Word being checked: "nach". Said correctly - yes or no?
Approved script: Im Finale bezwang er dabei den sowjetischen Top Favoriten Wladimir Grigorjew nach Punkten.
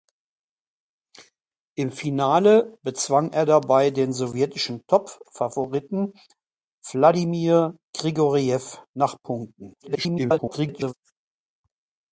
yes